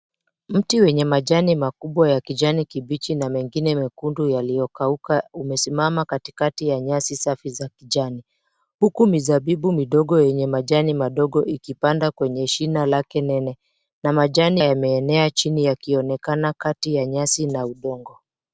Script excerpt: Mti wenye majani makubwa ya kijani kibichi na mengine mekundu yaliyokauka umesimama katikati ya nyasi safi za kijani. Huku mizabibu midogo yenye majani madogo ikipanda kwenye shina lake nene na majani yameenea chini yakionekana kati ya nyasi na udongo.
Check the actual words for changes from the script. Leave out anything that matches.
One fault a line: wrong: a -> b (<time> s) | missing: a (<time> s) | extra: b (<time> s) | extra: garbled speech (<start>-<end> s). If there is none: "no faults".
no faults